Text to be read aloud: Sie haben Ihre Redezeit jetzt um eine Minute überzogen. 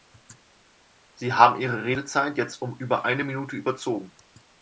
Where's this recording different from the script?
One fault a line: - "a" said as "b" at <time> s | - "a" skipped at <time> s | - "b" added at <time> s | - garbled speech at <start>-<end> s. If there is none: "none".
- "über" added at 2.8 s